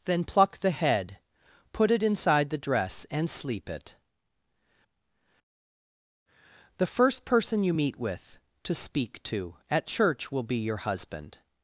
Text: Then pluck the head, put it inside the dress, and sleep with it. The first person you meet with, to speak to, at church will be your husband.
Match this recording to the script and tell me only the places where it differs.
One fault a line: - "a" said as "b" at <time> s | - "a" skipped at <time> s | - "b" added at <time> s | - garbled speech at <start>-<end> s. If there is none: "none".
- "with" skipped at 3.7 s